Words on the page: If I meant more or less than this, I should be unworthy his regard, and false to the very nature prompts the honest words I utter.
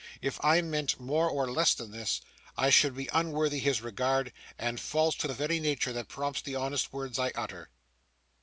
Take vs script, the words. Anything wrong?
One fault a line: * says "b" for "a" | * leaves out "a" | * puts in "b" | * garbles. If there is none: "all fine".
* puts in "that"